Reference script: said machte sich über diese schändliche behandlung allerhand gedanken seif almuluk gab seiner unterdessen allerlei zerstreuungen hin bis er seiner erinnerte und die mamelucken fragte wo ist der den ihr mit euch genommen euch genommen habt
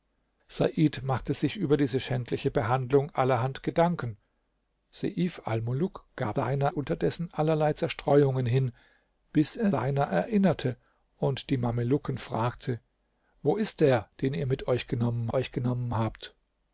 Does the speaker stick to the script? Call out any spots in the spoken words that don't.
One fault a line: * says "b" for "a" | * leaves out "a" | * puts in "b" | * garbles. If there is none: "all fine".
all fine